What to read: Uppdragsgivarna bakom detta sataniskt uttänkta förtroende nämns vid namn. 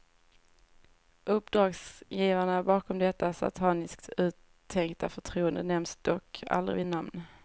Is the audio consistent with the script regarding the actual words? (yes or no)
no